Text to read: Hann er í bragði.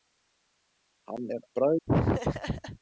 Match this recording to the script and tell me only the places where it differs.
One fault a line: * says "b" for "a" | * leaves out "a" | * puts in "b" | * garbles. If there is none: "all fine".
all fine